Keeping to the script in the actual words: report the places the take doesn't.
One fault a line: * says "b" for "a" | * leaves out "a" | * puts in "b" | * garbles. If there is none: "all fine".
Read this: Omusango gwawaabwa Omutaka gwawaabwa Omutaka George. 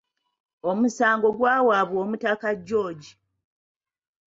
* leaves out "gwawaabwa Omutaka"